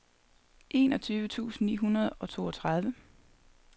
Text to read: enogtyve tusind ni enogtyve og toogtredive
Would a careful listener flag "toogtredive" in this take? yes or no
no